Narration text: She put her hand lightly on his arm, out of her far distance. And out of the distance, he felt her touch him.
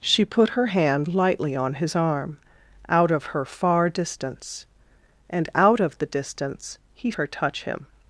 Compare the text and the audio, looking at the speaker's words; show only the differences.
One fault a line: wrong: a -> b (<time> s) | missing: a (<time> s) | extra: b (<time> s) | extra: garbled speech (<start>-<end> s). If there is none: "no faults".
missing: felt (7.1 s)